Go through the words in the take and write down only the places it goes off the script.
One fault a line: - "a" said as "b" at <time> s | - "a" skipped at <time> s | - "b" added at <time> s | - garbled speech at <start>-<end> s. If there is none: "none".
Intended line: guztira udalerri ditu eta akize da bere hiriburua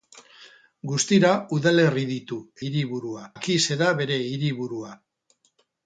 - "eta" said as "hiriburua" at 2.6 s